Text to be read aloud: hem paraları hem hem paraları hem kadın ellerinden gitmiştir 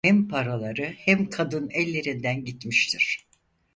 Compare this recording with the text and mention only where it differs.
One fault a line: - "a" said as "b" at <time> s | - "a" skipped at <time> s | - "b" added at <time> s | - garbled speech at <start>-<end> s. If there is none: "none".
- "hem paraları hem" skipped at 1.3 s